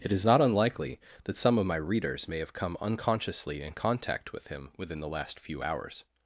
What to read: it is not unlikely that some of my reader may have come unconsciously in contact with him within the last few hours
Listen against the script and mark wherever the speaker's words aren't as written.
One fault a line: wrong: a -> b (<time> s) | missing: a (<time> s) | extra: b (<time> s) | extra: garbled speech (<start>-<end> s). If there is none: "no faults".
wrong: reader -> readers (1.8 s)